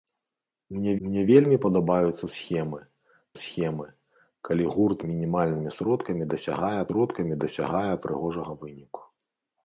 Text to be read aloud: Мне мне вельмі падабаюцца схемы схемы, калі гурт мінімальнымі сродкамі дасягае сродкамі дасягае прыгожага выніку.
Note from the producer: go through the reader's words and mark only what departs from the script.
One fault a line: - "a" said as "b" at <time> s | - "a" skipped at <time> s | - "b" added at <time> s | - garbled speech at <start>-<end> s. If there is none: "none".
none